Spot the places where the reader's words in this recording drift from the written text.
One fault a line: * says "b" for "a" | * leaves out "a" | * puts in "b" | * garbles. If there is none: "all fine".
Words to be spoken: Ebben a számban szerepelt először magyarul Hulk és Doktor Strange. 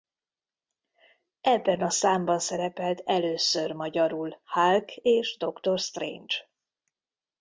all fine